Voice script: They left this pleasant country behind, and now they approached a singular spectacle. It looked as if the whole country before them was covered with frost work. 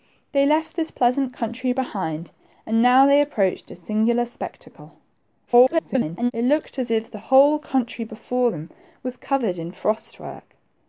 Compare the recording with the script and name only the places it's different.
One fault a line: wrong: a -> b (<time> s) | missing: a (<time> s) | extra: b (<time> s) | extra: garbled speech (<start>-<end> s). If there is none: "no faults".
extra: garbled speech (5.5-6.3 s)